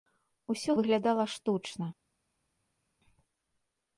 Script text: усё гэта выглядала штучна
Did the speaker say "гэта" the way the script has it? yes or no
no